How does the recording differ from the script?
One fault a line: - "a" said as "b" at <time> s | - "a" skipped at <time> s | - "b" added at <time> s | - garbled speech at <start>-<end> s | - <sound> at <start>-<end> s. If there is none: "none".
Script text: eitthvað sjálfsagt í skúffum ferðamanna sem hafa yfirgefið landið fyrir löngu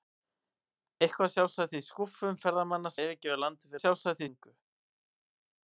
- "sem hafa" skipped at 3.0 s
- "fyrir" said as "sjálfsagt" at 3.8 s